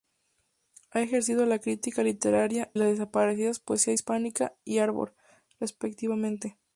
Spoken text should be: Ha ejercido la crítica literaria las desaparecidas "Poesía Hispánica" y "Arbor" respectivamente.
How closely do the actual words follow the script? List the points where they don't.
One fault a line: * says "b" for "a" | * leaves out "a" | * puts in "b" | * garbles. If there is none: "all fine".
all fine